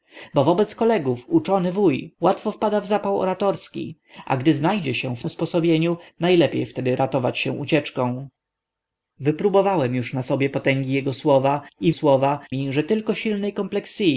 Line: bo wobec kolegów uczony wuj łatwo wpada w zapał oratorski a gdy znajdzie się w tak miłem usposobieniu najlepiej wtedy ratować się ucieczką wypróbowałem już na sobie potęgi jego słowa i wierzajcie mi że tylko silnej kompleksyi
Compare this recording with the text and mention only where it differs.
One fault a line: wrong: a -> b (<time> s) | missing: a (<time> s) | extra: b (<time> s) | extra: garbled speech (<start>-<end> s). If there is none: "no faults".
missing: tak miłem (5.2 s)
wrong: wierzajcie -> słowa (11.9 s)